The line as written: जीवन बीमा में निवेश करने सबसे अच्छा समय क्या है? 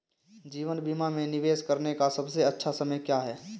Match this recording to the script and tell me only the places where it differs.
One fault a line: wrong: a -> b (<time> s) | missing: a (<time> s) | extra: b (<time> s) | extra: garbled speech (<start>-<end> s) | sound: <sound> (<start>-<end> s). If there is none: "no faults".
extra: का (1.9 s)